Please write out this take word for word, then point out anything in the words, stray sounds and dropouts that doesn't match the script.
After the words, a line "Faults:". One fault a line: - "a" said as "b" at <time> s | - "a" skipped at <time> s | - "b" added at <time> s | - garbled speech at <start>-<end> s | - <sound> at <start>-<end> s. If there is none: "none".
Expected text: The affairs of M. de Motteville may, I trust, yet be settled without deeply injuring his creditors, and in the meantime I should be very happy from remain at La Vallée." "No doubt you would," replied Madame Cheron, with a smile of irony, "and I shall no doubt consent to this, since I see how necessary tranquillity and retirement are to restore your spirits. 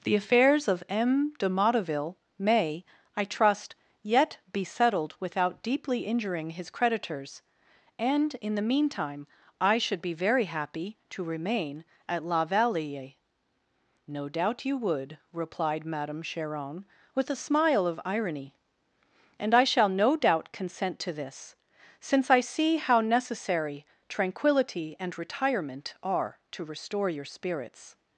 The affairs of M. de Motteville may, I trust, yet be settled without deeply injuring his creditors, and in the meantime I should be very happy to remain at La Vallée." "No doubt you would," replied Madame Cheron, with a smile of irony, "and I shall no doubt consent to this, since I see how necessary tranquillity and retirement are to restore your spirits.
Faults:
- "from" said as "to" at 11.1 s